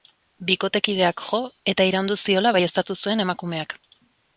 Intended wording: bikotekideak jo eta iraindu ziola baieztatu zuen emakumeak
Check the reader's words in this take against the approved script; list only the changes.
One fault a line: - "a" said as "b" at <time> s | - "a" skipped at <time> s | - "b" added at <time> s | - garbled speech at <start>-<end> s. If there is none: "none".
none